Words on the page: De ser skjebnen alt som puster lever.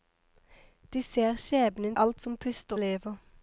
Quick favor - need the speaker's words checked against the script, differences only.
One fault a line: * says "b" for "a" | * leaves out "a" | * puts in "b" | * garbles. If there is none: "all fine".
all fine